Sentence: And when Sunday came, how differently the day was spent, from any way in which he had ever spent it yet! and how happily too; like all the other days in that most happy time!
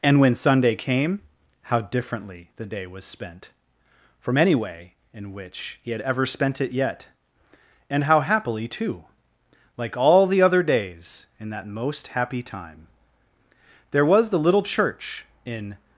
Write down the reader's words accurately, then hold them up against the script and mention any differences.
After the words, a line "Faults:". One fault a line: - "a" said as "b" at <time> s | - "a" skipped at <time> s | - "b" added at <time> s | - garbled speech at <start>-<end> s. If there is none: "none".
And when Sunday came, how differently the day was spent, from any way in which he had ever spent it yet! and how happily too; like all the other days in that most happy time! There was the little church, in
Faults:
- "There was the little church in" added at 13.9 s